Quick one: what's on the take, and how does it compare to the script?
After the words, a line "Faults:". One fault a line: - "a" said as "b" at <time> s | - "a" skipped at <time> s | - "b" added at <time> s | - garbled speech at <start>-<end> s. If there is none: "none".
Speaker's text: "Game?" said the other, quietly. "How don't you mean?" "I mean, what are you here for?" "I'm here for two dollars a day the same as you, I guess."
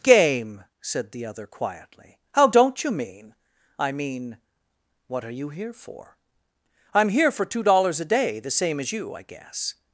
"Game?" said the other, quietly. "How don't you mean?" "I mean, what are you here for?" "I'm here for two dollars a day the same as you, I guess."
Faults:
none